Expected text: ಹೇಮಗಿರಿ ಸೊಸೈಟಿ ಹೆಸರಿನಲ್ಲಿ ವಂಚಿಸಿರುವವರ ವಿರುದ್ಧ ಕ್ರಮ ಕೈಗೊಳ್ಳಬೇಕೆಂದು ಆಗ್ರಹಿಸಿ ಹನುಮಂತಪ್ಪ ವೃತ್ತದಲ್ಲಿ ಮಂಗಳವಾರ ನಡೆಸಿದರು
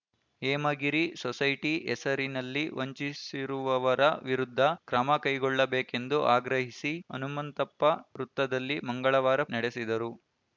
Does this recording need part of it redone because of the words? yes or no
no